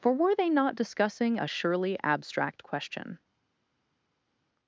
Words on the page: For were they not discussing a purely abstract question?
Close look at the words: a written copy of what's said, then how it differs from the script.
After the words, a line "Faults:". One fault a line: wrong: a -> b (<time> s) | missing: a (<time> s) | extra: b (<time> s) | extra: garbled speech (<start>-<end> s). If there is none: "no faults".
For were they not discussing a surely abstract question?
Faults:
wrong: purely -> surely (1.5 s)